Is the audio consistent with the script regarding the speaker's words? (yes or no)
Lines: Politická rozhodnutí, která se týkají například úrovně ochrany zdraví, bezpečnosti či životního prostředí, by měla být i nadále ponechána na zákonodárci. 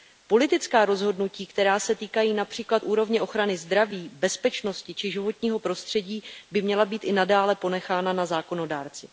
yes